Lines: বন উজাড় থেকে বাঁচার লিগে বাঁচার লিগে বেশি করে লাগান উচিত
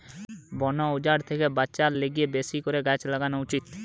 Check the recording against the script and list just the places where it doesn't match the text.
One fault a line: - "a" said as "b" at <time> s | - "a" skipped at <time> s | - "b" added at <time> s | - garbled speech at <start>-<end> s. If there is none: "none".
- "বাঁচার লিগে" skipped at 2.3 s
- "গাছ" added at 2.9 s